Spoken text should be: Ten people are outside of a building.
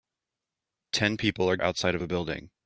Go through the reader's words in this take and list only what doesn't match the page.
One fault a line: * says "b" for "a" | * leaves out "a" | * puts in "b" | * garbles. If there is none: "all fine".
all fine